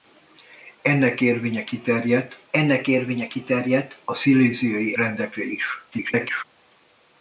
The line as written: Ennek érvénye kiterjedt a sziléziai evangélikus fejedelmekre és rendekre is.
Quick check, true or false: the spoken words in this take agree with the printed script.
false